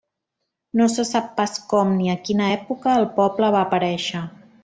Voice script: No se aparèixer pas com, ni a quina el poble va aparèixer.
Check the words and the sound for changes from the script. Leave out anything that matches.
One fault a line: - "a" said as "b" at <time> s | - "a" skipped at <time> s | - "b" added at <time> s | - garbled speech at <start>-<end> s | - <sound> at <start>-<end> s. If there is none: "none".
- "aparèixer" said as "sap" at 1.1 s
- "època" added at 2.5 s